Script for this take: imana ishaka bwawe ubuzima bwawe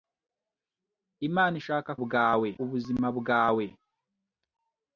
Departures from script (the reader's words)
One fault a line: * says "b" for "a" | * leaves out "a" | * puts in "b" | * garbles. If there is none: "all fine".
all fine